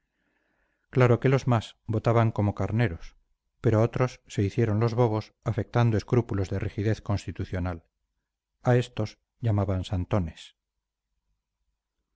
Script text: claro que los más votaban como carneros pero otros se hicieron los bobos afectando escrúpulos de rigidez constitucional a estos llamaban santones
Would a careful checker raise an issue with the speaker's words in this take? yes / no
no